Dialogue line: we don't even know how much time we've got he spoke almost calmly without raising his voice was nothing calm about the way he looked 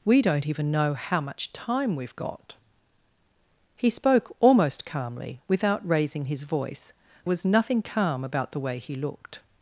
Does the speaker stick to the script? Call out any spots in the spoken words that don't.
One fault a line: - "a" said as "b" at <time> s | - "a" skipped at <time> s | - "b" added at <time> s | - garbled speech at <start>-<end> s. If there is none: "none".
none